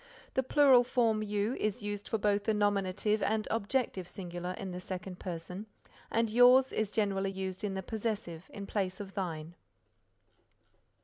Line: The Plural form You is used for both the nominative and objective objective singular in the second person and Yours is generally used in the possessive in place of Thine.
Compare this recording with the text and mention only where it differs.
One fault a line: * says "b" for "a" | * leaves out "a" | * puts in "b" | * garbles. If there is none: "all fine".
* leaves out "objective"